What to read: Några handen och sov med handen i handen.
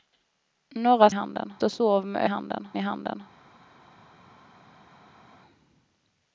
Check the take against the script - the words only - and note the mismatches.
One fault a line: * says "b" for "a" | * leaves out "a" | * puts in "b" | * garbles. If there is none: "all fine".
all fine